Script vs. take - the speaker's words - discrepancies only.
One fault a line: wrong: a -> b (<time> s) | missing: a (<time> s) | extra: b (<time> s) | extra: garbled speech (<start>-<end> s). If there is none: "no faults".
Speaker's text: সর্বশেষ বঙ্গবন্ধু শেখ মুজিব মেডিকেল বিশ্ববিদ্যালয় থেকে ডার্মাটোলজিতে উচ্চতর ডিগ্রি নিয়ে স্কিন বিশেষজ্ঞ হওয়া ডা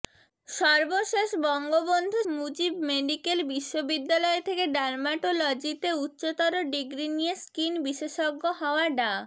missing: শেখ (2.2 s)